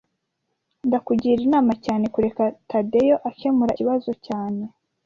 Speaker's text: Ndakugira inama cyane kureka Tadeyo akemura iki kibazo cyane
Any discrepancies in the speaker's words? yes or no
yes